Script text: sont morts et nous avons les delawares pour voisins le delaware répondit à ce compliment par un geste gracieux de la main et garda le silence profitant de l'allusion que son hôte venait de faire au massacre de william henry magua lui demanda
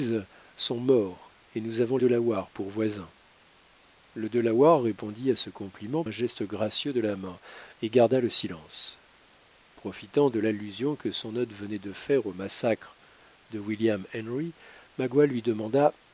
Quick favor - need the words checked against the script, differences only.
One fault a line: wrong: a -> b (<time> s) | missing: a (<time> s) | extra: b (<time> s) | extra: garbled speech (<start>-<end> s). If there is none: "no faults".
missing: les (2.0 s)
missing: par (6.0 s)